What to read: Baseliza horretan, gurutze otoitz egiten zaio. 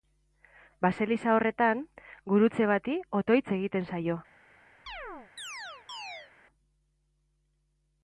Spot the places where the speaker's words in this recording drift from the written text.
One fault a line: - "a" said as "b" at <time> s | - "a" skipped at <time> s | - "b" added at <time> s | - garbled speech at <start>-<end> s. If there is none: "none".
- "bati" added at 2.7 s